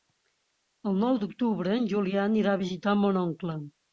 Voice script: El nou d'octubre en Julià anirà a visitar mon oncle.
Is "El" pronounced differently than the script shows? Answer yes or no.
no